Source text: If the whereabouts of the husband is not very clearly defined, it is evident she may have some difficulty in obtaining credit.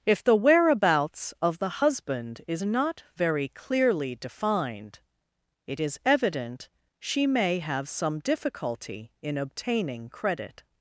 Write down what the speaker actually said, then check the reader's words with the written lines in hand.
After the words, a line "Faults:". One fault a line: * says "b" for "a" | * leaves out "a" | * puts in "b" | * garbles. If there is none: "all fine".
If the whereabouts of the husband is not very clearly defined, it is evident she may have some difficulty in obtaining credit.
Faults:
all fine